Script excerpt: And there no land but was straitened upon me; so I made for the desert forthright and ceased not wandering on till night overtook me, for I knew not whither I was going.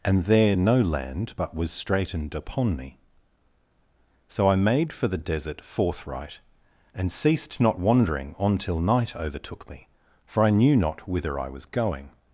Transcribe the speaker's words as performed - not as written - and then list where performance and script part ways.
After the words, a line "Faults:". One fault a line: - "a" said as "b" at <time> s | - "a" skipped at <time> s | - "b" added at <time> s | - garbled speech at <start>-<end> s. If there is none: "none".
And there no land but was straitened upon me; so I made for the desert forthright and ceased not wandering on till night overtook me, for I knew not whither I was going.
Faults:
none